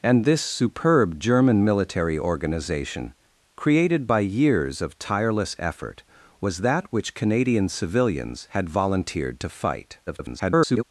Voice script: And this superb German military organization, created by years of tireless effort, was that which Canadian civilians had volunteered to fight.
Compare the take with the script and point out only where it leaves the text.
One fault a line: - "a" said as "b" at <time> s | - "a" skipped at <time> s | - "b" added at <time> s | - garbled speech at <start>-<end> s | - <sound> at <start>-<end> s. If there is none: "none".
- garbled speech at 10.1-10.8 s